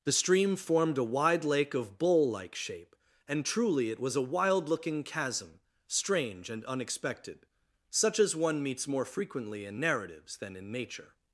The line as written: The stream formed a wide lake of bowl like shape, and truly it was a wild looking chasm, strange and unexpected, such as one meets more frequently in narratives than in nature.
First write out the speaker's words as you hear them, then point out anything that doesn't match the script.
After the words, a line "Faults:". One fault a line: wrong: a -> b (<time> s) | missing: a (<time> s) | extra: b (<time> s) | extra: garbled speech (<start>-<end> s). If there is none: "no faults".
The stream formed a wide lake of bowl like shape, and truly it was a wild looking chasm, strange and unexpected, such as one meets more frequently in narratives than in nature.
Faults:
no faults